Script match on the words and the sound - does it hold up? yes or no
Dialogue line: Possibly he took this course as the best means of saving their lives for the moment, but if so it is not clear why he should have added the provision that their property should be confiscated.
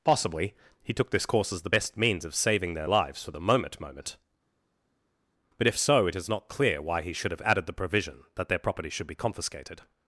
no